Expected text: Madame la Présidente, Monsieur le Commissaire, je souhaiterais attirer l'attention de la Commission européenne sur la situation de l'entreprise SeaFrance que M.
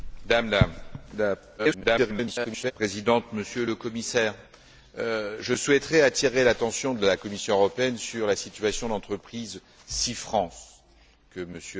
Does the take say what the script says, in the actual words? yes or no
no